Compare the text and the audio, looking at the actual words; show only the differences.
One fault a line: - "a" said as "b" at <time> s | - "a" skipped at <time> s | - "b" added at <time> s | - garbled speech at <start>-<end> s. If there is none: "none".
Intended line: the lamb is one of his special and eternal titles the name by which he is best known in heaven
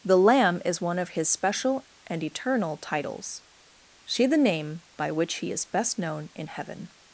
- "see" added at 4.1 s